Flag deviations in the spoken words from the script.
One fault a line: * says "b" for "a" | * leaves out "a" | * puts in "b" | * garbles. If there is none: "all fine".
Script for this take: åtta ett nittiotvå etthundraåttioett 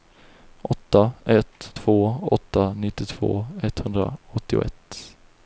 * puts in "två åtta"